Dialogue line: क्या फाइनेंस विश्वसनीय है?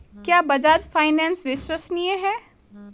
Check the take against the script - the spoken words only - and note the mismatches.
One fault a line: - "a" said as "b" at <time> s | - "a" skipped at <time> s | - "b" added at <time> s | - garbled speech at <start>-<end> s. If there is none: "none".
- "बजाज" added at 0.4 s